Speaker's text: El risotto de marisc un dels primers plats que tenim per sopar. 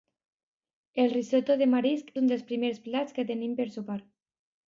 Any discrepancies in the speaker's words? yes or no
no